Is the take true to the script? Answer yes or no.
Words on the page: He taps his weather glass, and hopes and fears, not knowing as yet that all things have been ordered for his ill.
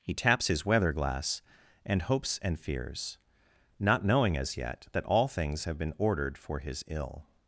yes